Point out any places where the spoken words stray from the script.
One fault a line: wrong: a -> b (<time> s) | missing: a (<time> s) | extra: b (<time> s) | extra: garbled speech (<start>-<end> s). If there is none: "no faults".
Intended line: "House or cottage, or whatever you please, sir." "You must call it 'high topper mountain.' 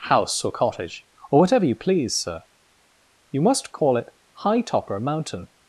no faults